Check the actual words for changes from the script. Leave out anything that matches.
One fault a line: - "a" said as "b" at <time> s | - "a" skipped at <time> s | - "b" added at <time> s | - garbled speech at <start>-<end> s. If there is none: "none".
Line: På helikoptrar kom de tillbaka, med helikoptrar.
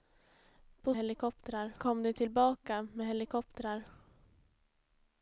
none